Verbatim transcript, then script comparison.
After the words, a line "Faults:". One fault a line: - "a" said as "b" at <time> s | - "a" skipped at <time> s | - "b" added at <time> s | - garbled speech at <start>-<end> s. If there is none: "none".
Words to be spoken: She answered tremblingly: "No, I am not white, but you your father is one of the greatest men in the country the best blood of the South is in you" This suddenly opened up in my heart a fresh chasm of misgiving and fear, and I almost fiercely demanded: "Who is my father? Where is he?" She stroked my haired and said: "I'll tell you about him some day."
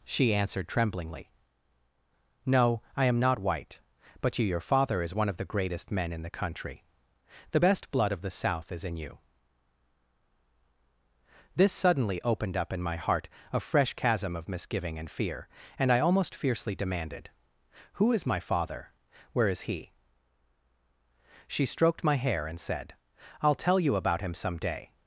She answered tremblingly: "No, I am not white, but you your father is one of the greatest men in the country the best blood of the South is in you" This suddenly opened up in my heart a fresh chasm of misgiving and fear, and I almost fiercely demanded: "Who is my father? Where is he?" She stroked my hair and said: "I'll tell you about him some day."
Faults:
- "haired" said as "hair" at 22.2 s